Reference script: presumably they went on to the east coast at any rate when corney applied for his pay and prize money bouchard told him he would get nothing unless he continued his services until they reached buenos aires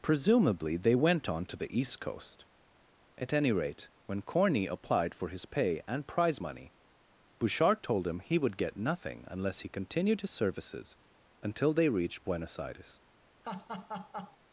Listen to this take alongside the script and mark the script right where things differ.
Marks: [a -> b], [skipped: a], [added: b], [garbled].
presumably they went on to the east coast at any rate when corney applied for his pay and prize money bouchard told him he would get nothing unless he continued his services until they reached buenos aires